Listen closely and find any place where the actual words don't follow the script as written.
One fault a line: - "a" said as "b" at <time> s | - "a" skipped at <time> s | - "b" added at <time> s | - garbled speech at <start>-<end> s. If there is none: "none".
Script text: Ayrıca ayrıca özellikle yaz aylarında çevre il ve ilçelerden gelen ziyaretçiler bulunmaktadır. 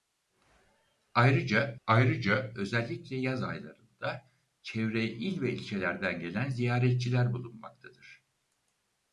none